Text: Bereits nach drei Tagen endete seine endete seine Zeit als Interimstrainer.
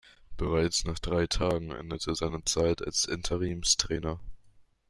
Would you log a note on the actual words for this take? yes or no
yes